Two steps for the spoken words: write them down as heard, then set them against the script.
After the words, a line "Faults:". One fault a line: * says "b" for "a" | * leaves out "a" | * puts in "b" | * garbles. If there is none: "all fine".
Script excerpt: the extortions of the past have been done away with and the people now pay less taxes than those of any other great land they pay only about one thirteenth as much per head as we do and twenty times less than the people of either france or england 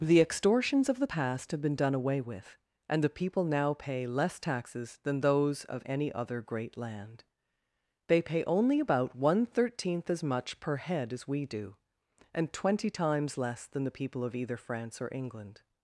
the extortions of the past have been done away with and the people now pay less taxes than those of any other great land they pay only about one thirteenth as much per head as we do and twenty times less than the people of either france or england
Faults:
all fine